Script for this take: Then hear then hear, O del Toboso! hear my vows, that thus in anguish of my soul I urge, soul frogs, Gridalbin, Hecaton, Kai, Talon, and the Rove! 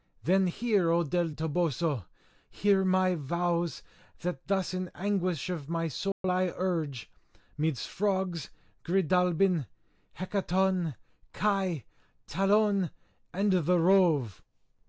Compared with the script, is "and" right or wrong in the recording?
right